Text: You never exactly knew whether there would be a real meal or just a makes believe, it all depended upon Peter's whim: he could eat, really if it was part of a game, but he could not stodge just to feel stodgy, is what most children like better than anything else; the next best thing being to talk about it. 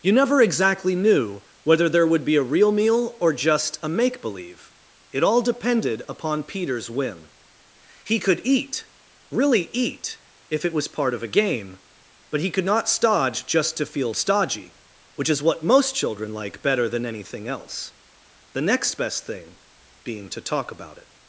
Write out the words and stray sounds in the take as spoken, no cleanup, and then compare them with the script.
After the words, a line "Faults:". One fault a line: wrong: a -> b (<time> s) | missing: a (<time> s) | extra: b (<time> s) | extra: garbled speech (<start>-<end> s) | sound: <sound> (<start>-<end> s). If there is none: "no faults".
You never exactly knew whether there would be a real meal or just a make believe, it all depended upon Peter's whim: he could eat, really eat, if it was part of a game, but he could not stodge just to feel stodgy, which is what most children like better than anything else; the next best thing being to talk about it.
Faults:
wrong: makes -> make (3.9 s)
extra: eat (9.7 s)
extra: which (15.2 s)